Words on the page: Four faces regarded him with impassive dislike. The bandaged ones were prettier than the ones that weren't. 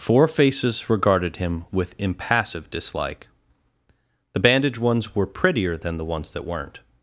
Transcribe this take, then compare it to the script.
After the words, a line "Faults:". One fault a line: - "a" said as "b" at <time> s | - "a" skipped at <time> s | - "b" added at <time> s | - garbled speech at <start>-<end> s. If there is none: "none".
Four faces regarded him with impassive dislike. The bandaged ones were prettier than the ones that weren't.
Faults:
none